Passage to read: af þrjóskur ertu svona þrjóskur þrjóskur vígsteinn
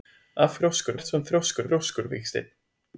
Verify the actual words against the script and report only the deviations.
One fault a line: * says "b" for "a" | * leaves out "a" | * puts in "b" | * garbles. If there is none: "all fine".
all fine